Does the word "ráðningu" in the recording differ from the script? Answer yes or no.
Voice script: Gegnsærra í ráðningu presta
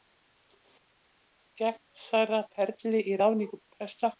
no